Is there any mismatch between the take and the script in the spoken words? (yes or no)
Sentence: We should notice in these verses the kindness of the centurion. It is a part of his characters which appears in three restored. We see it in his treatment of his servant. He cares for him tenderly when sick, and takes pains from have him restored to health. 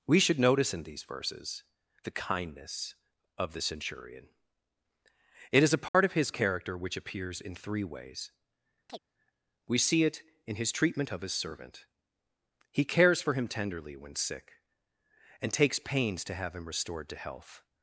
yes